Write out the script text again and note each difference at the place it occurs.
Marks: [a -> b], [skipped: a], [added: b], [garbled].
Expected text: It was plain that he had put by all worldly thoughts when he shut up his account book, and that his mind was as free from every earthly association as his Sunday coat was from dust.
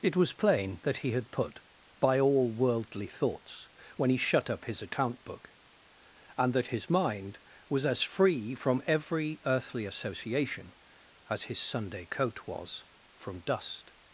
It was plain that he had put by all worldly thoughts when he shut up his account book, and that his mind was as free from every earthly association as his Sunday coat was from dust.